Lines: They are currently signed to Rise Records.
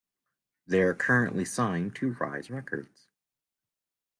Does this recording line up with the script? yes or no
yes